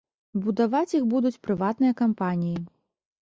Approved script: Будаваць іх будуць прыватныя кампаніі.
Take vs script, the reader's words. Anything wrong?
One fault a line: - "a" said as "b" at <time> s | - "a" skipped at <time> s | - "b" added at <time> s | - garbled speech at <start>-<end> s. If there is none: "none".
none